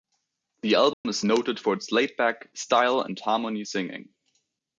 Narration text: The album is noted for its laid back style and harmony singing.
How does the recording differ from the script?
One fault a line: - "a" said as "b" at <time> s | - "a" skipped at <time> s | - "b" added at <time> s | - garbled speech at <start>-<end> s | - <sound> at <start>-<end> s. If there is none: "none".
- dropout at 0.9-1.1 s